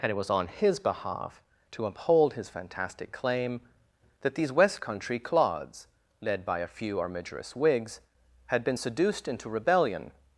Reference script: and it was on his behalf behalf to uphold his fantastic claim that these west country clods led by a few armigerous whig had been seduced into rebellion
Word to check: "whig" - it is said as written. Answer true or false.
false